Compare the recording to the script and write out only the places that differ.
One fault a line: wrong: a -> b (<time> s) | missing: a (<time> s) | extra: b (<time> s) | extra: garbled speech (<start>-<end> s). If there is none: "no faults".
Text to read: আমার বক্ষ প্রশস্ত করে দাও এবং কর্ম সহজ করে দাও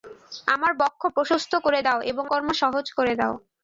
no faults